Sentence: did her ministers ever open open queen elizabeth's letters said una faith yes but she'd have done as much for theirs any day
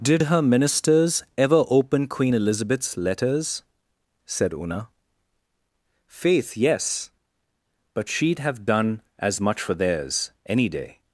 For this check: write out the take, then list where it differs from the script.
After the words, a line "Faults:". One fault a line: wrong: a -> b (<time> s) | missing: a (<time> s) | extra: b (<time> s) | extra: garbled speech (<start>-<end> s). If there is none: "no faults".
did her ministers ever open queen elizabeth's letters said una faith yes but she'd have done as much for theirs any day
Faults:
missing: open (2.1 s)